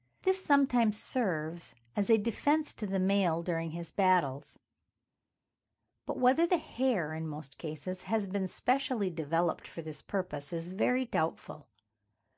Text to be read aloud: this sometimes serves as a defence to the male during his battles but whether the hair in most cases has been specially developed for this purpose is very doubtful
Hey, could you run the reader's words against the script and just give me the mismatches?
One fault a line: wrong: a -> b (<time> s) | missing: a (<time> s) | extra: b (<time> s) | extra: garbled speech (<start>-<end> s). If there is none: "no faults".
no faults